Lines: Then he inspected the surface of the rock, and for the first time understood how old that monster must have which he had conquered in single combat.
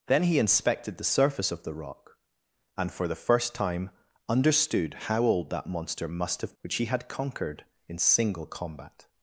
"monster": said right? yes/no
yes